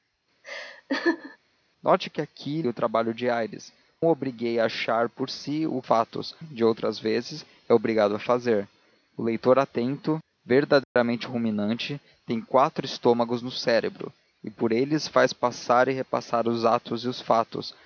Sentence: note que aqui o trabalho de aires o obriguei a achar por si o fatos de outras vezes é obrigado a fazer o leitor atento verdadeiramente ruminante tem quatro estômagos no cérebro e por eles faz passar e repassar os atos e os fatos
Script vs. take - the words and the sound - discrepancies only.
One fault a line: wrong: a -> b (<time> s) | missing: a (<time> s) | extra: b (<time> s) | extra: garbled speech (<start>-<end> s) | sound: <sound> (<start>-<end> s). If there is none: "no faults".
sound: laugh (0.4-1.4 s)
sound: dropout (10.8-11.0 s)